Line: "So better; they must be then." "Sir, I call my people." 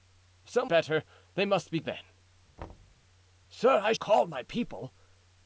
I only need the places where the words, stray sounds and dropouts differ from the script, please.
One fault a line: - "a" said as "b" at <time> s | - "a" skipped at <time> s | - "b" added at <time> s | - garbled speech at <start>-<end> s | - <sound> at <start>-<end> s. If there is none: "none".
- thud at 2.6-3.0 s